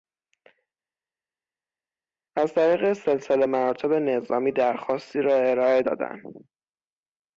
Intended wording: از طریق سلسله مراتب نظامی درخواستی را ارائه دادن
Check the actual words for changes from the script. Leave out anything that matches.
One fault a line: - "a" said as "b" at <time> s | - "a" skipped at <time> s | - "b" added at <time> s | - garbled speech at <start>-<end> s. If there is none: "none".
none